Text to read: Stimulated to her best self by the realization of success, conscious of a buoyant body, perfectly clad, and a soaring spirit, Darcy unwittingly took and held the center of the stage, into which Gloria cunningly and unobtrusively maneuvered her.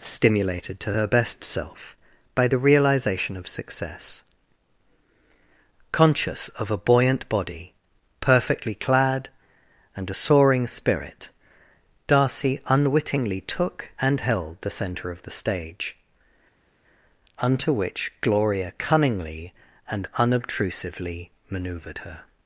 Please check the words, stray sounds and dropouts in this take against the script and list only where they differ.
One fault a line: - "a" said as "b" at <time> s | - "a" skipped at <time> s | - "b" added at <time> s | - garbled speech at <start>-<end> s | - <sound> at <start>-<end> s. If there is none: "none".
- "into" said as "unto" at 17.4 s